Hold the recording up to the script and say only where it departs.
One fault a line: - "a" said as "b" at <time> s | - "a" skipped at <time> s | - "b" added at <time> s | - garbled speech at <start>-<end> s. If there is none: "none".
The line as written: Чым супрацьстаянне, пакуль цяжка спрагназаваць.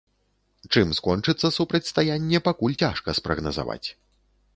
- "скончыцца" added at 1.0 s